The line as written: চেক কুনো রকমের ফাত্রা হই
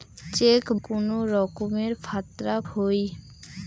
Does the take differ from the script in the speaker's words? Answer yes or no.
no